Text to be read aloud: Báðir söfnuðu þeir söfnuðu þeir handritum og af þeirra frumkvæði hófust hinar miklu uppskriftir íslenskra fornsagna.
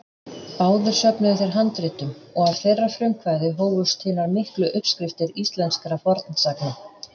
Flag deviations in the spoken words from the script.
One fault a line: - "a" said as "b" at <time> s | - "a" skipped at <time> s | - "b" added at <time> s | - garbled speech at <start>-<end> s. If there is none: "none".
- "söfnuðu þeir" skipped at 1.5 s